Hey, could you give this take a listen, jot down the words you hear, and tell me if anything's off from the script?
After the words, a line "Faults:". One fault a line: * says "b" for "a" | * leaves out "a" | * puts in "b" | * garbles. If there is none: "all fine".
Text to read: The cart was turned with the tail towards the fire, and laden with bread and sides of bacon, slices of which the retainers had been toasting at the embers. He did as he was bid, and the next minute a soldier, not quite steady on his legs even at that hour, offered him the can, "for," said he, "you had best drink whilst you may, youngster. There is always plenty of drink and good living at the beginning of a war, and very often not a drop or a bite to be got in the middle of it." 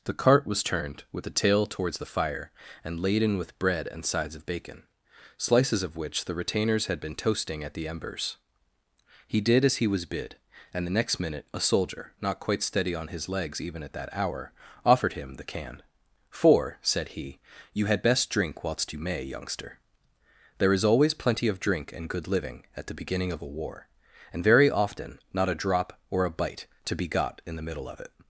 The cart was turned with the tail towards the fire, and laden with bread and sides of bacon, slices of which the retainers had been toasting at the embers. He did as he was bid, and the next minute a soldier, not quite steady on his legs even at that hour, offered him the can, "for," said he, "you had best drink whilst you may, youngster. There is always plenty of drink and good living at the beginning of a war, and very often not a drop or a bite to be got in the middle of it."
Faults:
all fine